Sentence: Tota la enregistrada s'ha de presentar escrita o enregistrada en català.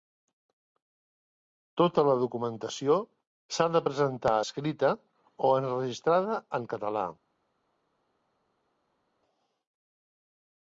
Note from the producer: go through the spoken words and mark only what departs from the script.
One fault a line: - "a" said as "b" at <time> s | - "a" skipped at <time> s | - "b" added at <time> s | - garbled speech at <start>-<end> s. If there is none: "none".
- "enregistrada" said as "documentació" at 2.2 s